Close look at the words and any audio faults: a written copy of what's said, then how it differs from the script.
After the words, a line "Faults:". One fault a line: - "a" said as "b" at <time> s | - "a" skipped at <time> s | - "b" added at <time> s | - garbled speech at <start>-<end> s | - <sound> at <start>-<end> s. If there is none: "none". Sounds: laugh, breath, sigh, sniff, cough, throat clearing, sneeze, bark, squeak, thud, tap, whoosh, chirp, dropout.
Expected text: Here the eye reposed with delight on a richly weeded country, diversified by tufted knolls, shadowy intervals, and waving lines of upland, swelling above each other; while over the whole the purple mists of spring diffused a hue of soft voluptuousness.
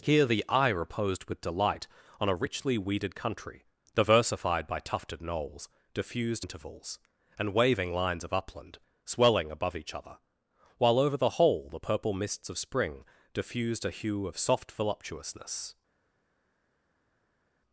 Here the eye reposed with delight on a richly weeded country, diversified by tufted knolls, diffused intervals, and waving lines of upland, swelling above each other; while over the whole the purple mists of spring diffused a hue of soft voluptuousness.
Faults:
- "shadowy" said as "diffused" at 5.9 s